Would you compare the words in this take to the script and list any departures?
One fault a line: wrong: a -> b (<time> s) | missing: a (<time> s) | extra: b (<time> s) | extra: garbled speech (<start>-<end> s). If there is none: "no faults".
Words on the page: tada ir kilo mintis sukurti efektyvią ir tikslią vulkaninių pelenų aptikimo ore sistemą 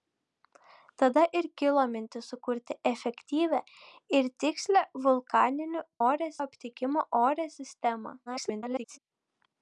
wrong: pelenų -> ore (6.1 s)
extra: garbled speech (8.3-9.0 s)